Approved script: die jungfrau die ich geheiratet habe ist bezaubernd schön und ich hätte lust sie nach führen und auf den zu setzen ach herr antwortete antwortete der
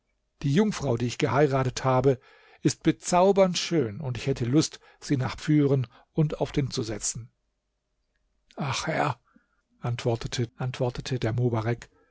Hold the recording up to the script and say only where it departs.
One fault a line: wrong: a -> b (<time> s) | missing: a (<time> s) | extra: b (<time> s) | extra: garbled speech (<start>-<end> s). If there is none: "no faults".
no faults